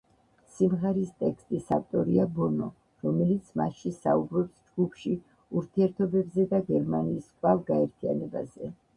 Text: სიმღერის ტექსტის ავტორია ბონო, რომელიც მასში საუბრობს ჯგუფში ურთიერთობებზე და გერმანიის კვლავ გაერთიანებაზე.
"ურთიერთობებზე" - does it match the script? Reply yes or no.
yes